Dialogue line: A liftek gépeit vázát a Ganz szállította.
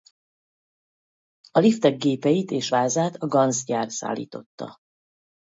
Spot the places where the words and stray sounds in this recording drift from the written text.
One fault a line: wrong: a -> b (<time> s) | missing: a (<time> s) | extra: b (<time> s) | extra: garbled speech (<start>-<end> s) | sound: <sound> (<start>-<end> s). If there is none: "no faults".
extra: és (2.5 s)
extra: gyár (3.6 s)